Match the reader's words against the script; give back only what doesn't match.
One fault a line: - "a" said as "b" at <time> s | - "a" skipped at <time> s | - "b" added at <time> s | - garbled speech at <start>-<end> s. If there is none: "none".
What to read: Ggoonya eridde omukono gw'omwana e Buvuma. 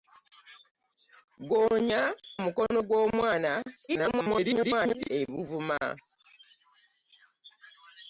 - "eridde" skipped at 2.0 s
- garbled speech at 3.9-5.1 s